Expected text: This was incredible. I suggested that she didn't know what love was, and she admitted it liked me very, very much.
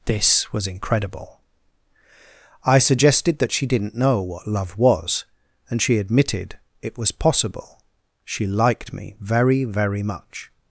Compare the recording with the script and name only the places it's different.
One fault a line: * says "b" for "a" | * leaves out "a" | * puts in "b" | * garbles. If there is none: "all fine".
* puts in "was possible she"